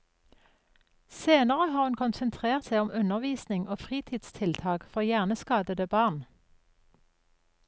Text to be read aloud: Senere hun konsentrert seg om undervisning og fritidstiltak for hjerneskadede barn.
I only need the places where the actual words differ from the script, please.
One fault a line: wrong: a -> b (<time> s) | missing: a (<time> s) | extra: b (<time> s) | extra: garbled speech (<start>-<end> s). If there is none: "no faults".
extra: har (1.7 s)